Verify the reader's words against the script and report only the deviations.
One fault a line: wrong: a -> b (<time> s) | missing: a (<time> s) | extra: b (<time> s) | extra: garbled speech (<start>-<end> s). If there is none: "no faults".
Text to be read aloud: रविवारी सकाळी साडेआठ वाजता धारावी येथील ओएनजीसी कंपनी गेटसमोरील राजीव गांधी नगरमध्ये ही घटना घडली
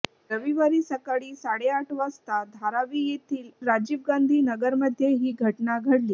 missing: ओएनजीसी कंपनी गेटसमोरील (3.5 s)